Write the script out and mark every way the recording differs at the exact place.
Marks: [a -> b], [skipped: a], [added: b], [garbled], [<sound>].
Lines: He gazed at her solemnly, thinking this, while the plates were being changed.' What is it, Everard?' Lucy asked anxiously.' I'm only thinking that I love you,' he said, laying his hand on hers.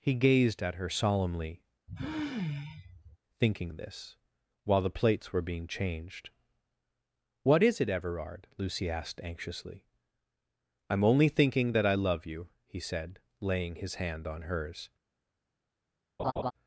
He gazed at her solemnly, [sigh] thinking this, while the plates were being changed.' What is it, Everard?' Lucy asked anxiously.' I'm only thinking that I love you,' he said, laying his hand on hers. [laugh]